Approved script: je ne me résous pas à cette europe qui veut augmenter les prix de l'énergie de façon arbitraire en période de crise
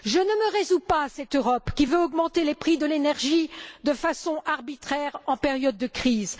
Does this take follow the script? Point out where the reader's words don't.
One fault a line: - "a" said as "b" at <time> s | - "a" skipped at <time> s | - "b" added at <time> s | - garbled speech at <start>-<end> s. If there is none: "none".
none